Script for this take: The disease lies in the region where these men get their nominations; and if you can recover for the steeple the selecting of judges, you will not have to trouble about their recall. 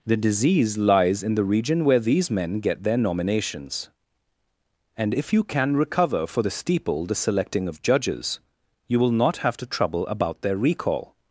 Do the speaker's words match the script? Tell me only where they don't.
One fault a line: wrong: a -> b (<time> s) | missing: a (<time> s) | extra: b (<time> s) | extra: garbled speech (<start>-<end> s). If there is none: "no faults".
no faults